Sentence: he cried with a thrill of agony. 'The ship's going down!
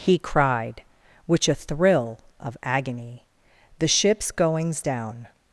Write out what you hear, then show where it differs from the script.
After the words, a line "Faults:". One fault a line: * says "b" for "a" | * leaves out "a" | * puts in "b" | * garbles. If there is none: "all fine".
he cried which a thrill of agony. 'The ship's goings down!
Faults:
* says "which" for "with"
* says "goings" for "going"